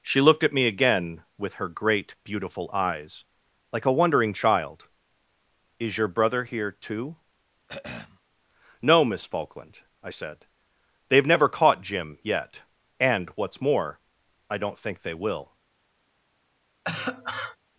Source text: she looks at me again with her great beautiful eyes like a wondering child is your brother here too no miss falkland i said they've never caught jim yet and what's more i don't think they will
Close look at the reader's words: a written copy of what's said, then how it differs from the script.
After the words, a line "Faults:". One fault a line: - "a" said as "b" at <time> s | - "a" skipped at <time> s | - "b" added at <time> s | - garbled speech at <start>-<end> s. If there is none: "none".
she looked at me again with her great beautiful eyes like a wondering child is your brother here too no miss falkland i said they've never caught jim yet and what's more i don't think they will
Faults:
- "looks" said as "looked" at 0.2 s